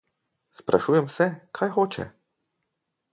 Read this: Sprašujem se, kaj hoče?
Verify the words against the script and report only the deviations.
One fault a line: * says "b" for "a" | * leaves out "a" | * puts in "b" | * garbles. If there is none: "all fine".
all fine